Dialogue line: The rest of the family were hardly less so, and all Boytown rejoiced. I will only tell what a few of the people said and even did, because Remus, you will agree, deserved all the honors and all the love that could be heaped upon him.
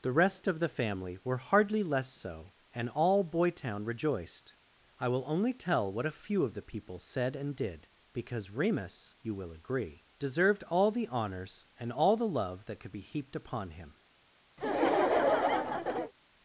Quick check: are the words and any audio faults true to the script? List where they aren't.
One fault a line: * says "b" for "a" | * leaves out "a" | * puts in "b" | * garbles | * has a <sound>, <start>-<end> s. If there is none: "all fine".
* leaves out "even"
* has a laugh, 14.6-16.1 s